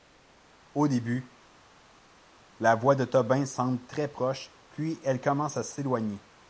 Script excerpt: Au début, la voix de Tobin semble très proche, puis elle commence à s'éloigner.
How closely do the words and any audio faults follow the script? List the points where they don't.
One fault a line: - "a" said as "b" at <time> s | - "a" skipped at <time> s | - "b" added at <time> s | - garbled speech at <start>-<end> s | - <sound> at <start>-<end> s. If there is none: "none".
none